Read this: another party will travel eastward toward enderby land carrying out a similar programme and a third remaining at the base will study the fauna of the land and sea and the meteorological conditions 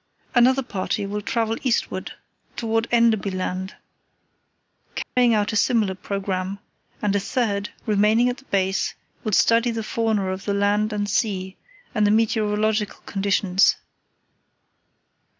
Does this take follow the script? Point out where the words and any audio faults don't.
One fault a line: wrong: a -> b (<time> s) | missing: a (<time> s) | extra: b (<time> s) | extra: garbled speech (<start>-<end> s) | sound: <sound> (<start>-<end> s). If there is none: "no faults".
sound: dropout (5.0-5.2 s)